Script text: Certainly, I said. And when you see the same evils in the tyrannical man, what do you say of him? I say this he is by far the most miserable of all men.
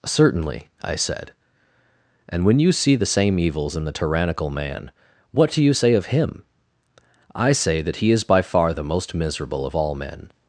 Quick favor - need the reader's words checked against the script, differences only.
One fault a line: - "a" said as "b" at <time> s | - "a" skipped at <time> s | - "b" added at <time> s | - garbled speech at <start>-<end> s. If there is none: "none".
- "this" said as "that" at 7.8 s